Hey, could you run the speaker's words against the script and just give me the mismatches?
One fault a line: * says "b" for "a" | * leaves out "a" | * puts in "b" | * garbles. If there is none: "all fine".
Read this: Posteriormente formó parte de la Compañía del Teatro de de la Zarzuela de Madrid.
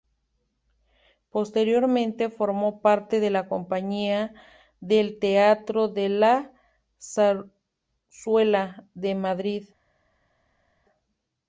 * leaves out "de"